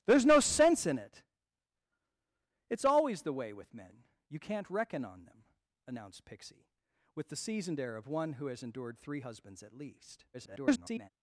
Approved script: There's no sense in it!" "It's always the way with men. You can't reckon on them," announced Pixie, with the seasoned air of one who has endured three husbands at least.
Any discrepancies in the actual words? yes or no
yes